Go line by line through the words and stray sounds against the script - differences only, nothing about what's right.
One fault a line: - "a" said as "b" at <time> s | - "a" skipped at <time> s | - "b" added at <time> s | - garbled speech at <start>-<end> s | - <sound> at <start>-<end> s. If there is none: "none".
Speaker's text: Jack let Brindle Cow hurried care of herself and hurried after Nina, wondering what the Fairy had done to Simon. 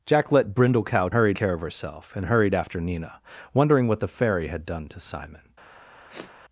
- sniff at 6.1-6.3 s